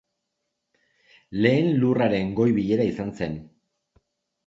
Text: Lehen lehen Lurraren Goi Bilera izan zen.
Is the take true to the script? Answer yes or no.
no